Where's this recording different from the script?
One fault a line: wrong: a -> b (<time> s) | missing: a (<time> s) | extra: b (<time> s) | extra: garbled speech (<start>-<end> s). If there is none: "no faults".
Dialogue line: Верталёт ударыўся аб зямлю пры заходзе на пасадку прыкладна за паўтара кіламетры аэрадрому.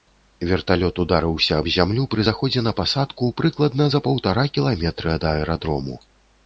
extra: ад (5.2 s)